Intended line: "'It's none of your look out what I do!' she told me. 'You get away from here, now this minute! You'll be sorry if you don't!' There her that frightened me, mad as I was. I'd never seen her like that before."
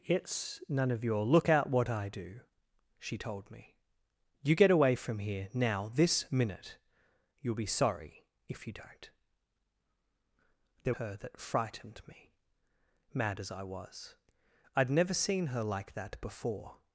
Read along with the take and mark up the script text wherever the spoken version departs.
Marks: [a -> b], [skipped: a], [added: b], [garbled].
"'It's none of your look out what I do!' she told me. 'You get away from here, now this minute! You'll be sorry if you don't!' There her that frightened me, mad as I was. I'd never seen her like that before."